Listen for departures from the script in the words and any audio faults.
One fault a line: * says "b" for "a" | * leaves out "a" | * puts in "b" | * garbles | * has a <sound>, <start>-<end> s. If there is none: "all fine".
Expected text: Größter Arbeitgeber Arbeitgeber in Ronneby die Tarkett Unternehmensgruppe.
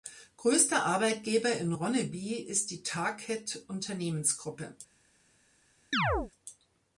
* leaves out "Arbeitgeber"
* puts in "ist"
* has a chirp, 5.9-6.3 s